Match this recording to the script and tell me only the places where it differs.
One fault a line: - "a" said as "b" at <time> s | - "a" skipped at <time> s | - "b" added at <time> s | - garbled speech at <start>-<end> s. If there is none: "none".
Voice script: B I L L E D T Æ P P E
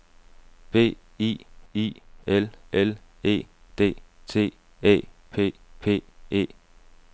- "I" added at 1.7 s